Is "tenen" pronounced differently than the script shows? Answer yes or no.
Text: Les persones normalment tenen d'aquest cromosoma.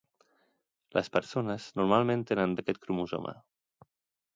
no